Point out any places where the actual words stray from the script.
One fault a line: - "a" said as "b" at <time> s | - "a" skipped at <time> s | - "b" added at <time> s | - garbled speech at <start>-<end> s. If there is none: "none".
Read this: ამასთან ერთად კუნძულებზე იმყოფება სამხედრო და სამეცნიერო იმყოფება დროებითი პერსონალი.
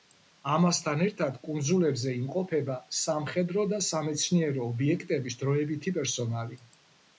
- "იმყოფება" said as "ობიექტების" at 4.7 s